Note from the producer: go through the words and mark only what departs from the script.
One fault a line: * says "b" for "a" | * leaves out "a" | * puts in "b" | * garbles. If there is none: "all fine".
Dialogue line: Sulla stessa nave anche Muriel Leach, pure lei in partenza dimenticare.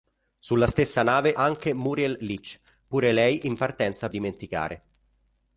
all fine